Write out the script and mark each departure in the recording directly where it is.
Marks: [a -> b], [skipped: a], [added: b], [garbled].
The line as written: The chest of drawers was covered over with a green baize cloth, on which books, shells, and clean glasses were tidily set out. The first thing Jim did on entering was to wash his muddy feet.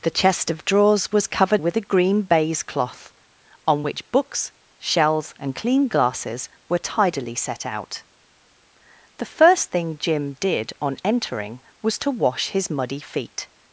The chest of drawers was covered [skipped: over] with a green baize cloth, on which books, shells, and clean glasses were tidily set out. The first thing Jim did on entering was to wash his muddy feet.